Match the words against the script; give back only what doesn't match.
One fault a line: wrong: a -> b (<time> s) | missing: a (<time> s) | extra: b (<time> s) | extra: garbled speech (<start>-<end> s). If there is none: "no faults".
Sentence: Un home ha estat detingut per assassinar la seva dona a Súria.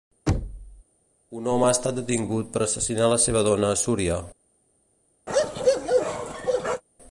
no faults